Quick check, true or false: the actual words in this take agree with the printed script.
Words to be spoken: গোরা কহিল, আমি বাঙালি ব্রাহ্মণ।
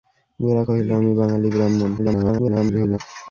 false